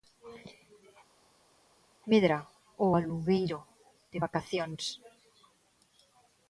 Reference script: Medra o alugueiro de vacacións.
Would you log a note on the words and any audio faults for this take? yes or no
no